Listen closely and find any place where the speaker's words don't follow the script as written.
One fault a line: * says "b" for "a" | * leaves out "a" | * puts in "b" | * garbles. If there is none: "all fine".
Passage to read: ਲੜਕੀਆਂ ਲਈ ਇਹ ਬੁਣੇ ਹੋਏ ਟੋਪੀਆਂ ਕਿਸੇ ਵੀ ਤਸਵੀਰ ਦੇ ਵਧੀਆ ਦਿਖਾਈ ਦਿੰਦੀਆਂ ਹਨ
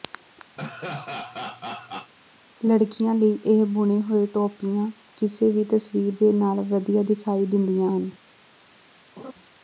* puts in "ਨਾਲ"